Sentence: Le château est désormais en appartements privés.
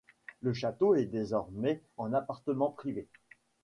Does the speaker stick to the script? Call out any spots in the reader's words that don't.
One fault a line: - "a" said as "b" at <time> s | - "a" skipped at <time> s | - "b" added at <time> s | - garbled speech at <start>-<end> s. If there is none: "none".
none